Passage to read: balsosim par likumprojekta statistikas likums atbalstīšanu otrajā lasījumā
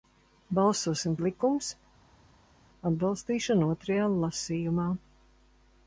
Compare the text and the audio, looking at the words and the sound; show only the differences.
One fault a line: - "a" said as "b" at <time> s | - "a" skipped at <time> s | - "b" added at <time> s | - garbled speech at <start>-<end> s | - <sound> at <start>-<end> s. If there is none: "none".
- "par likumprojekta statistikas" skipped at 1.2 s